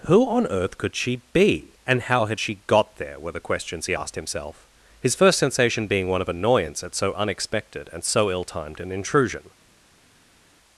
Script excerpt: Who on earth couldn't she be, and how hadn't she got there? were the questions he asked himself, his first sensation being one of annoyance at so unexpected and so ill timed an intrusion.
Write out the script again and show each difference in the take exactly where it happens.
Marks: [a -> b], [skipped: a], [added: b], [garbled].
Who on earth [couldn't -> could] she be, and how [hadn't -> had] she got there? were the questions he asked himself, his first sensation being one of annoyance at so unexpected and so ill timed an intrusion.